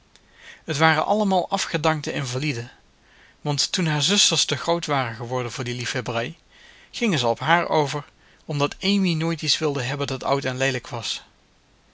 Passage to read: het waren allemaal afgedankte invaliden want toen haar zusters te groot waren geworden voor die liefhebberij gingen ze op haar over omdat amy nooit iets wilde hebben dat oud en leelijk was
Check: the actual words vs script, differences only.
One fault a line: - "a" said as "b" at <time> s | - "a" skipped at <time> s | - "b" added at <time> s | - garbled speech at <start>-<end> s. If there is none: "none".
none